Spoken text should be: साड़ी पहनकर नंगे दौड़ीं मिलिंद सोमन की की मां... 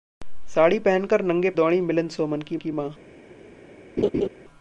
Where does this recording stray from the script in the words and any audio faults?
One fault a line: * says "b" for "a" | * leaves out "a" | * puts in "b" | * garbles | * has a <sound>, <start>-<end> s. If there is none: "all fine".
* has a laugh, 4.0-4.3 s